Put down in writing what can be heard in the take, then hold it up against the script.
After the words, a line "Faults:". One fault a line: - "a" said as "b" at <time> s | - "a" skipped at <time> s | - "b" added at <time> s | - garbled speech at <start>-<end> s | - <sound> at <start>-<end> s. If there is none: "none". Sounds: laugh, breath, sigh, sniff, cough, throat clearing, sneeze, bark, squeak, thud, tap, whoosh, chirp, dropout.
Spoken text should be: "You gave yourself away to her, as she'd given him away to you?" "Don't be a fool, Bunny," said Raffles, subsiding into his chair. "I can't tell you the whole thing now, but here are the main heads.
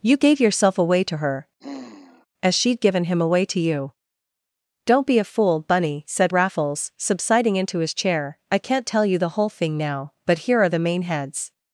"You gave yourself away to her, as she'd given him away to you?" "Don't be a fool, Bunny," said Raffles, subsiding into his chair. "I can't tell you the whole thing now, but here are the main heads.
Faults:
- sigh at 1.6-2.3 s